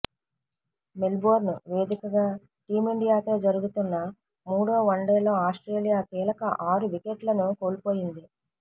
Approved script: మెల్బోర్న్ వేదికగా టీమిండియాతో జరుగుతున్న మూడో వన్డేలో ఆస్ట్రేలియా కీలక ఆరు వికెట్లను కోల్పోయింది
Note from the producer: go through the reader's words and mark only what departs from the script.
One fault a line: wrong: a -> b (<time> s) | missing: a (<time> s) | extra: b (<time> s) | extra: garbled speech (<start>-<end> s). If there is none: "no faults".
no faults